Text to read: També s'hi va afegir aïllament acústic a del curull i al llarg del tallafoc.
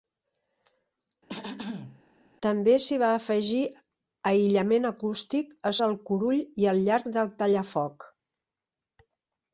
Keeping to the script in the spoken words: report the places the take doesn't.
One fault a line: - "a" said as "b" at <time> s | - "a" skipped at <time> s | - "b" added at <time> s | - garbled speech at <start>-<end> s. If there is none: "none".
none